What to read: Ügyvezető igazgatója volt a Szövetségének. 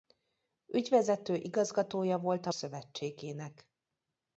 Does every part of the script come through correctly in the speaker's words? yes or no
yes